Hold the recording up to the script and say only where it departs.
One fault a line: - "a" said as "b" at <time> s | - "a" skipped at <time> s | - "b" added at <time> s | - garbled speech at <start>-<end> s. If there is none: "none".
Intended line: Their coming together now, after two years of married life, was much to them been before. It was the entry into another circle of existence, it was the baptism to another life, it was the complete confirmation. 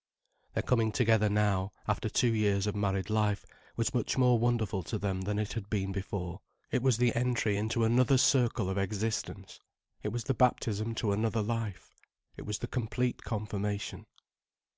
- "more wonderful" added at 4.2 s
- "than it had" added at 5.2 s